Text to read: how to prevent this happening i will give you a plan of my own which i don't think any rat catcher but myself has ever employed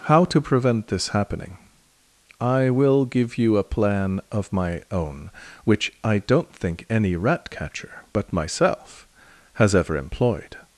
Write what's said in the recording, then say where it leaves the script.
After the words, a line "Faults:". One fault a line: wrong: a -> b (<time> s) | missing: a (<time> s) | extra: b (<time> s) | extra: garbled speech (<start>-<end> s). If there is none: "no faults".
how to prevent this happening i will give you a plan of my own which i don't think any rat catcher but myself has ever employed
Faults:
no faults